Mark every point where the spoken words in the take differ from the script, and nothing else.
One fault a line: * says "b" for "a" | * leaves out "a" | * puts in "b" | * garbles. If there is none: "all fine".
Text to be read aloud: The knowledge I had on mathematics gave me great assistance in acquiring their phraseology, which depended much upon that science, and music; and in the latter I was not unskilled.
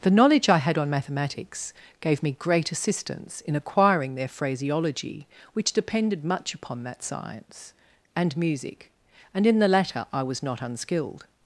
all fine